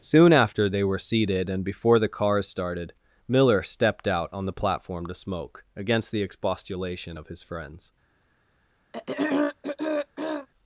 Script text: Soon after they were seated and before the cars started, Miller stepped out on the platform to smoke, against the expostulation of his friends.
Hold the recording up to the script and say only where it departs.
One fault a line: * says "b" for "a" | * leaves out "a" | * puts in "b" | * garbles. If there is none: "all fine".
all fine